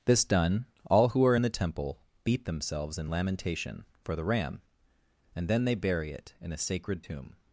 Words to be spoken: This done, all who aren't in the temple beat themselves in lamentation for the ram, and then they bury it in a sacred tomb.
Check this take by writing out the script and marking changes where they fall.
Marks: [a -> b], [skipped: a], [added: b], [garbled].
This done, all who [aren't -> are] in the temple beat themselves in lamentation for the ram, and then they bury it in a sacred tomb.